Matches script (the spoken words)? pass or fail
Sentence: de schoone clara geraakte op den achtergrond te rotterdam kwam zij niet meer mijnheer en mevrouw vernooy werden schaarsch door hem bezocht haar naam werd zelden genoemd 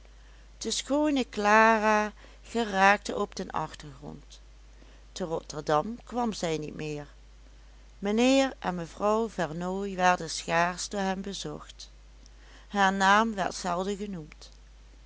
pass